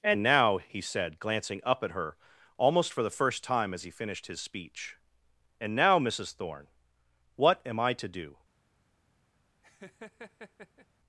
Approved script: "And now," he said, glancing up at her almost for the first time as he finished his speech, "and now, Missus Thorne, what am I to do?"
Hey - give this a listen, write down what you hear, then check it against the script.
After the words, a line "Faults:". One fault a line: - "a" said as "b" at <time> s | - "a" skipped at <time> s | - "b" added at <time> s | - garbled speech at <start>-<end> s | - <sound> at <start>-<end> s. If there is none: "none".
"And now," he said, glancing up at her almost for the first time as he finished his speech, "and now, Missus Thorne, what am I to do?"
Faults:
- laugh at 9.6-10.9 s